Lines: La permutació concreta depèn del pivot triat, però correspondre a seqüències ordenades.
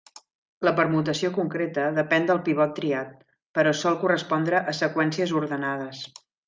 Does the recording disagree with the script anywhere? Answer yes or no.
yes